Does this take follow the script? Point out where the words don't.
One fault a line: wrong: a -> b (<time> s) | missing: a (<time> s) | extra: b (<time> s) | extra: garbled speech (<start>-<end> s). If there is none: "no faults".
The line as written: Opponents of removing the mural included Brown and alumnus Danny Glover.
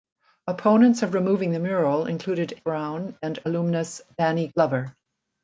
no faults